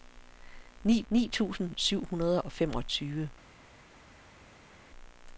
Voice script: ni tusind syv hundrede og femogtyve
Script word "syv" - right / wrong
right